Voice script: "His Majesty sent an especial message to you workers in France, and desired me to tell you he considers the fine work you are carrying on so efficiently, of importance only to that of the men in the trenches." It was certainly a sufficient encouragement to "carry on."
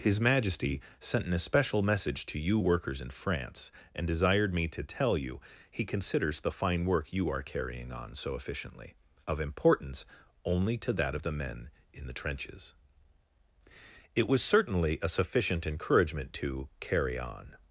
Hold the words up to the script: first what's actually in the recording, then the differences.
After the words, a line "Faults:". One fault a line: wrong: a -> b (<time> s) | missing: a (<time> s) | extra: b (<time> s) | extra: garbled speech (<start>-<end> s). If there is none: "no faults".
"His Majesty sent an especial message to you workers in France, and desired me to tell you he considers the fine work you are carrying on so efficiently, of importance only to that of the men in the trenches." It was certainly a sufficient encouragement to "carry on."
Faults:
no faults